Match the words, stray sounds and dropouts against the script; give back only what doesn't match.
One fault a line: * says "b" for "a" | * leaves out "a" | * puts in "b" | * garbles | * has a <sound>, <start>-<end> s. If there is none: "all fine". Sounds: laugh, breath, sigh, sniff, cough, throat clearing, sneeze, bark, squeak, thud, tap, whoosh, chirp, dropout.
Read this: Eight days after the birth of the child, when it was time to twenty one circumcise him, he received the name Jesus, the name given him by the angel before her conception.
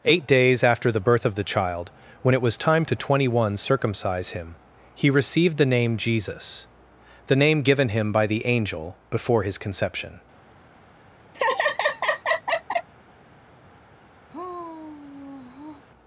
* says "his" for "her"
* has a laugh, 11.3-12.9 s
* has a sigh, 14.3-15.8 s